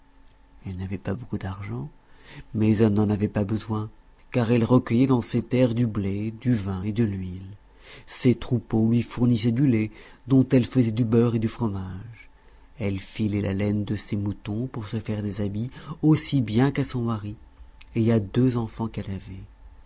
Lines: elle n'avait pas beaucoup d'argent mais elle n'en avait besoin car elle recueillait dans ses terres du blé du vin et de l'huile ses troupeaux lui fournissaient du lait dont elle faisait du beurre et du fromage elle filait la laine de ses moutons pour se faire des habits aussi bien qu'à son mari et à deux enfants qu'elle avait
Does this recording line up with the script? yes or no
no